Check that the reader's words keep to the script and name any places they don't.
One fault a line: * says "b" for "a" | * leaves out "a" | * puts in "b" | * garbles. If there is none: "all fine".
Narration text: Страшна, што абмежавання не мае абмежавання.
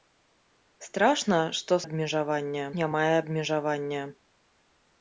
all fine